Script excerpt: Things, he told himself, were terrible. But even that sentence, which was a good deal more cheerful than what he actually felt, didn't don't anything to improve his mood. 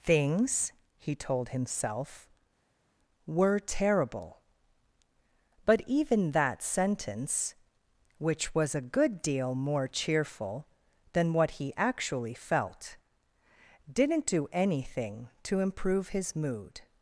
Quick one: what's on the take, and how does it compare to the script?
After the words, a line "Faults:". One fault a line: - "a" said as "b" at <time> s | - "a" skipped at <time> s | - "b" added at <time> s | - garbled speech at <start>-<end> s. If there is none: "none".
Things, he told himself, were terrible. But even that sentence, which was a good deal more cheerful than what he actually felt, didn't do anything to improve his mood.
Faults:
- "don't" said as "do" at 14.3 s